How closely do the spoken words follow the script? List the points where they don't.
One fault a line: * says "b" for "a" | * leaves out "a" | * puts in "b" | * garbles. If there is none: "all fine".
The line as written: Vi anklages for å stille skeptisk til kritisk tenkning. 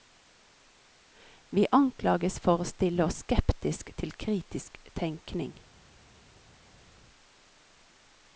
* puts in "oss"